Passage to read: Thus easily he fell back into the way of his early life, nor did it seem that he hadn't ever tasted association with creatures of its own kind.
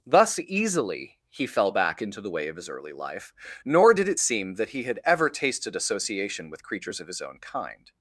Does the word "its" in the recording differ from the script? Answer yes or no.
yes